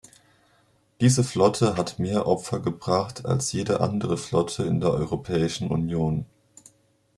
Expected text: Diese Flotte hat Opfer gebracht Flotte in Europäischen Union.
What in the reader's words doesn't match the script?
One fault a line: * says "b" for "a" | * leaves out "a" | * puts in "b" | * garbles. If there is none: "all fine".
* puts in "mehr"
* puts in "als jede andere"
* puts in "der"